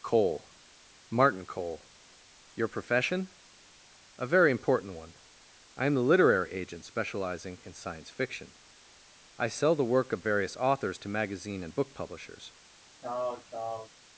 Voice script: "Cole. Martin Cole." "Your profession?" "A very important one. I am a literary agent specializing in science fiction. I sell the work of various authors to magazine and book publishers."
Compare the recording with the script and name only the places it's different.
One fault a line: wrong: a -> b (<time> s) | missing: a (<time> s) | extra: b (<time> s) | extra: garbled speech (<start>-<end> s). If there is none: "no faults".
wrong: a -> the (6.0 s)